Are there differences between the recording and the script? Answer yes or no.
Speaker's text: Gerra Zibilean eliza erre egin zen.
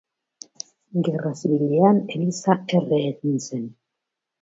no